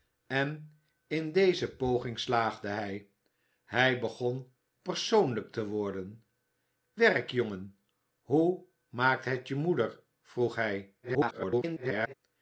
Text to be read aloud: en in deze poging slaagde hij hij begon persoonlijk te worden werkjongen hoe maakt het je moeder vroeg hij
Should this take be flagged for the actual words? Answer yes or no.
yes